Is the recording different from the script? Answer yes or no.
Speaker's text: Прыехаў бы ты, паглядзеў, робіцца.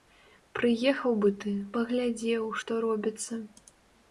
yes